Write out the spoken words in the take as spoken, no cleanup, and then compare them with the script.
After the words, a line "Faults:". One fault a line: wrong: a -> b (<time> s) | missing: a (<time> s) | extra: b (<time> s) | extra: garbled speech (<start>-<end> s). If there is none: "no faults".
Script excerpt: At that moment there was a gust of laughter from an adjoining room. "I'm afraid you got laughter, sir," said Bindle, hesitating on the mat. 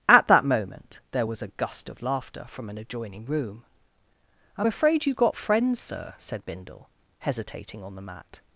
At that moment there was a gust of laughter from an adjoining room. "I'm afraid you got friends, sir," said Bindle, hesitating on the mat.
Faults:
wrong: laughter -> friends (5.4 s)